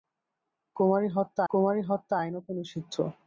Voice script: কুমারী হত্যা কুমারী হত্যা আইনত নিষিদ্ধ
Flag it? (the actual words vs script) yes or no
no